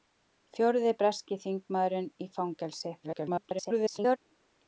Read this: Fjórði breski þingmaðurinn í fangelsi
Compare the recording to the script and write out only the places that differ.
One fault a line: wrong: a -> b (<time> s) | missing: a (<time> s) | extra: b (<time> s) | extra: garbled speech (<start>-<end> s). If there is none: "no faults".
extra: garbled speech (3.0-4.2 s)